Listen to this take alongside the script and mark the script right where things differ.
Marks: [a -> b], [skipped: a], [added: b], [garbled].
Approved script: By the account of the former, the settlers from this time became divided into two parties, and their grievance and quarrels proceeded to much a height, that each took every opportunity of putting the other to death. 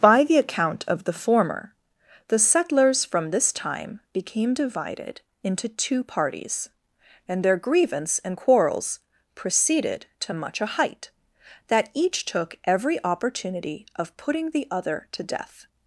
By the account of the former, the settlers from this time became divided into two parties, and their grievance and quarrels proceeded to much a height, that each took every opportunity of putting the other to death.